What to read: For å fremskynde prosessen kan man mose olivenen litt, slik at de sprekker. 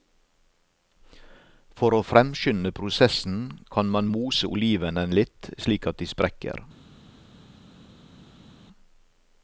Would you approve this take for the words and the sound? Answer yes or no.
yes